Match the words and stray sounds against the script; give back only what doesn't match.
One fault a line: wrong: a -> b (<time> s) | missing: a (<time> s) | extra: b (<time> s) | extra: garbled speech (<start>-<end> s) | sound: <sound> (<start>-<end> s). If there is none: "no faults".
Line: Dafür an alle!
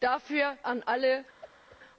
sound: whoosh (1.4-1.8 s)